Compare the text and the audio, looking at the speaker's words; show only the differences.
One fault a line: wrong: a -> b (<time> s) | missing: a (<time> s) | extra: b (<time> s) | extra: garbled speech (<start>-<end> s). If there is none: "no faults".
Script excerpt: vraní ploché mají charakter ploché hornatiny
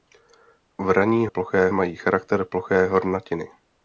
no faults